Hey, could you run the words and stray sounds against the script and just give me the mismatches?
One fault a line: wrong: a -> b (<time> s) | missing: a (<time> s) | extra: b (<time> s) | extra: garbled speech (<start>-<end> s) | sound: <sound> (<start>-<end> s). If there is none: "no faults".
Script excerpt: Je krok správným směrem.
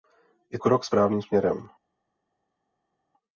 no faults